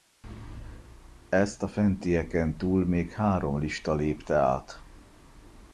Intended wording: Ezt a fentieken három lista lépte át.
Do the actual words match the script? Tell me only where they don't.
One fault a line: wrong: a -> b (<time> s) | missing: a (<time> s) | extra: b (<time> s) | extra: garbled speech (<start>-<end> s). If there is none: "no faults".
extra: túl még (2.6 s)